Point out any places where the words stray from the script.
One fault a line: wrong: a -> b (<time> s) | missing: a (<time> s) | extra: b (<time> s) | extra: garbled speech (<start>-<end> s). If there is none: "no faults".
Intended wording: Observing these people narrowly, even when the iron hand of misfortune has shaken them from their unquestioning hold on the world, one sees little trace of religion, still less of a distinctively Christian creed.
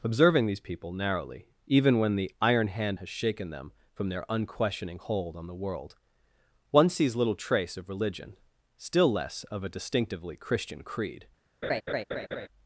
missing: of misfortune (3.0 s)